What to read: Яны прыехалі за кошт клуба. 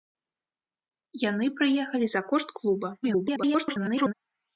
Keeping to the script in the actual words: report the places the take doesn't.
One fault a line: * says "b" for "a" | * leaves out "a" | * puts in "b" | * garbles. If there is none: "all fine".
* garbles